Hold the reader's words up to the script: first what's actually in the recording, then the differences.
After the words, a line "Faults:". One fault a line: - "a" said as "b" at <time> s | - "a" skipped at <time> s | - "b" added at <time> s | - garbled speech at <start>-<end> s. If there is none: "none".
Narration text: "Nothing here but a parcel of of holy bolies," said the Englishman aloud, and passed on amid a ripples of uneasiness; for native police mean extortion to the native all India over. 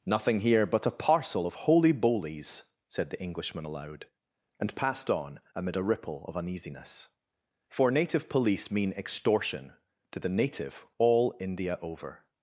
"Nothing here but a parcel of holy bolies," said the Englishman aloud, and passed on amid a ripple of uneasiness; for native police mean extortion to the native all India over.
Faults:
- "of" skipped at 1.5 s
- "ripples" said as "ripple" at 5.8 s